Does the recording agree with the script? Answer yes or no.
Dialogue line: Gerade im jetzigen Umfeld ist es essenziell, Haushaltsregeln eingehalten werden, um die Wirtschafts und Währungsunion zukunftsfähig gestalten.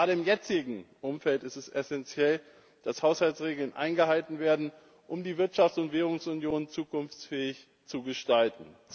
no